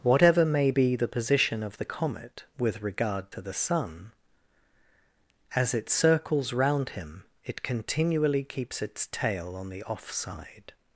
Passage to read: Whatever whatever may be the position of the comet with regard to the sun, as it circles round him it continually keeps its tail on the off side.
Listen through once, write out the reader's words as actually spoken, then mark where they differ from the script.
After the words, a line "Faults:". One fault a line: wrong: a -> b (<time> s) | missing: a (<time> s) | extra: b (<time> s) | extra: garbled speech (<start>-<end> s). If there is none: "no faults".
Whatever may be the position of the comet with regard to the sun, as it circles round him it continually keeps its tail on the off side.
Faults:
missing: whatever (0.5 s)